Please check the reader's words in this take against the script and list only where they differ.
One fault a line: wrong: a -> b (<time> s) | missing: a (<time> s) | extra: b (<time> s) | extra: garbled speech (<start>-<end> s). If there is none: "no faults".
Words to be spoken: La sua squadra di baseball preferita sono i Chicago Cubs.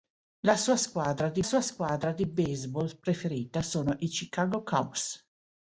extra: sua squadra di (1.4 s)